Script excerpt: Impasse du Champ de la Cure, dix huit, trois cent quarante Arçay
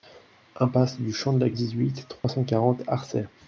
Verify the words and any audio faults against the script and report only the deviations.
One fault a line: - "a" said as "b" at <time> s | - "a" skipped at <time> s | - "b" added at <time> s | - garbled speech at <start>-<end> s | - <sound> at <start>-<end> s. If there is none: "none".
- "Cure" skipped at 1.5 s
- dropout at 2.2-2.2 s